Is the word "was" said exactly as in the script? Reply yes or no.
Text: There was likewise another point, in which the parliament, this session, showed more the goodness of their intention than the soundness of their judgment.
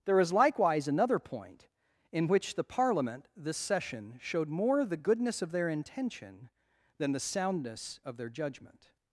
no